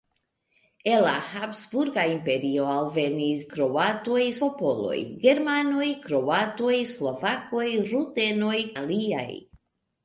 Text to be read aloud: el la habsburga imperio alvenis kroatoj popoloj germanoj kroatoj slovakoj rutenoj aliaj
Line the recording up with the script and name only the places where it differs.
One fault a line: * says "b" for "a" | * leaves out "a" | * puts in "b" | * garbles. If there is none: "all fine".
all fine